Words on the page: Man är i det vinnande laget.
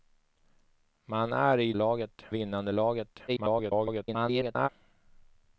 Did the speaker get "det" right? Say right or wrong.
wrong